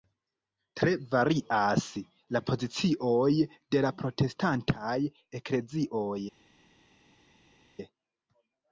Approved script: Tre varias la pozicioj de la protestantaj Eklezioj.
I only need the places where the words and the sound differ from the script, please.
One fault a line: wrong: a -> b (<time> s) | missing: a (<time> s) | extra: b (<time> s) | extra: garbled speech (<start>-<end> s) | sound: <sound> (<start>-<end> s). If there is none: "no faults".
no faults